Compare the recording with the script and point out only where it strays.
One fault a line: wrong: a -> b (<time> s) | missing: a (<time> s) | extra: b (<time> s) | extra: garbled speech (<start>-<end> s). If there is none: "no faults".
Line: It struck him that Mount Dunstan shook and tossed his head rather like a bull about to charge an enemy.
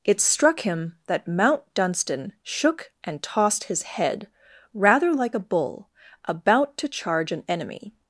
no faults